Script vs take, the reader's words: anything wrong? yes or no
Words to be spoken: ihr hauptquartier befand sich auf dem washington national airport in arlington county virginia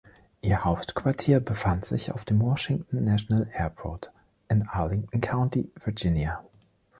no